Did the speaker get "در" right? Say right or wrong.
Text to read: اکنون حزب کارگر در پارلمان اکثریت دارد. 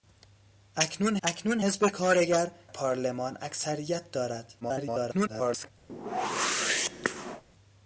wrong